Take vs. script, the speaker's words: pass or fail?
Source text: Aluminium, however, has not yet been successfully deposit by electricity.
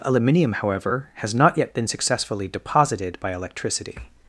fail